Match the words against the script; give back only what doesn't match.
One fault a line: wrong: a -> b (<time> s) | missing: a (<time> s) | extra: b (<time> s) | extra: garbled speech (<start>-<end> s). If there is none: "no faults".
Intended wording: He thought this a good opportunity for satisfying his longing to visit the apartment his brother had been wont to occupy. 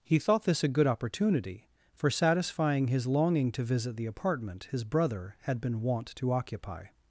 no faults